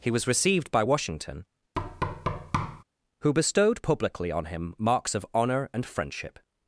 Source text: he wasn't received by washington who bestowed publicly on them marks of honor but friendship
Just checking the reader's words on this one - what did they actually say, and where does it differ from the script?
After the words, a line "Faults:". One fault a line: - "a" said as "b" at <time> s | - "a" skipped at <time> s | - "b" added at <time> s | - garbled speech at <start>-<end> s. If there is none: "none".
he was received by washington who bestowed publicly on him marks of honor and friendship
Faults:
- "wasn't" said as "was" at 0.1 s
- "them" said as "him" at 4.4 s
- "but" said as "and" at 5.7 s